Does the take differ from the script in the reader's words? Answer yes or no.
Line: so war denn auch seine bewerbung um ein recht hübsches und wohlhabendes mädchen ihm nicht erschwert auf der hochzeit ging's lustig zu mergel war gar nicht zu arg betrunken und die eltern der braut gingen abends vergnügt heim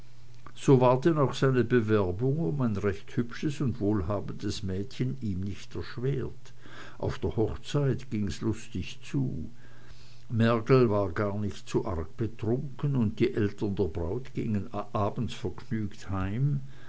no